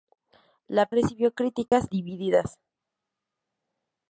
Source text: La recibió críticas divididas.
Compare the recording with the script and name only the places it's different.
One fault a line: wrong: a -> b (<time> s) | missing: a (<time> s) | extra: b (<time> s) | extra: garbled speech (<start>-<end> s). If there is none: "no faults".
no faults